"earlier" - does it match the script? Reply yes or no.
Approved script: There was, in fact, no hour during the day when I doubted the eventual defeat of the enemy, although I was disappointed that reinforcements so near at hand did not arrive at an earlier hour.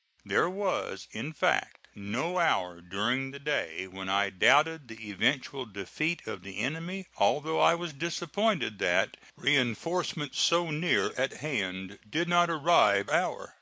no